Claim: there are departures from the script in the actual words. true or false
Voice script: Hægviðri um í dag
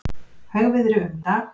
false